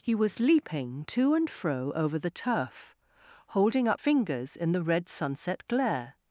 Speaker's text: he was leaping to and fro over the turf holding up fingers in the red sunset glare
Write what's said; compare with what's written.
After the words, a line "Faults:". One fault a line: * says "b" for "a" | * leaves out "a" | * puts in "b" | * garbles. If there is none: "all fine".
he was leaping to and fro over the turf holding up fingers in the red sunset glare
Faults:
all fine